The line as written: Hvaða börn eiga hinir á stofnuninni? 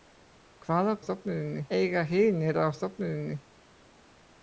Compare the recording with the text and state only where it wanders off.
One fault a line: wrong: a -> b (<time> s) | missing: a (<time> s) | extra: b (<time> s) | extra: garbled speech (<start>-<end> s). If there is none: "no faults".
wrong: börn -> stofnuninni (1.1 s)